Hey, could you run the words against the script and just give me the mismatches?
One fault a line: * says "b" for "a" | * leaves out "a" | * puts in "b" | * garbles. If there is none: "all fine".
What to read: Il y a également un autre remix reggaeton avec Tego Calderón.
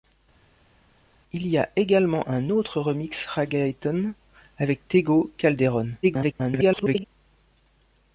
* garbles